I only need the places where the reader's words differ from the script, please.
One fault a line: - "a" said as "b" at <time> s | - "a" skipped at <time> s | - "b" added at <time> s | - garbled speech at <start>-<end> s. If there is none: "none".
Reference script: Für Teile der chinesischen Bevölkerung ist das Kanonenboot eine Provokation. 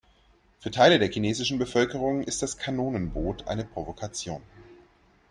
none